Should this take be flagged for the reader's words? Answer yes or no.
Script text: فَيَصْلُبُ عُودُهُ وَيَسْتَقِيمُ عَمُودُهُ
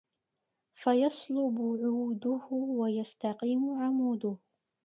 no